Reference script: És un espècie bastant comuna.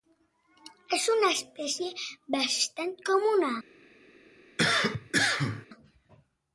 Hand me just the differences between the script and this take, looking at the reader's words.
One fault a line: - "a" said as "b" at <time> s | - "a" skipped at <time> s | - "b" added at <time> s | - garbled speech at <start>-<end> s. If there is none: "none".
- "un" said as "una" at 1.2 s